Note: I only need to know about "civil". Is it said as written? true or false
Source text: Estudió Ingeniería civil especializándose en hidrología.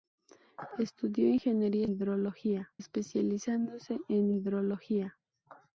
false